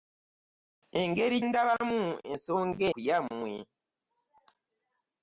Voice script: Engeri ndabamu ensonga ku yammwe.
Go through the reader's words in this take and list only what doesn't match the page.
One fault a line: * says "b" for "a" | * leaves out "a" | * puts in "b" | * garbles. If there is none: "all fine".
all fine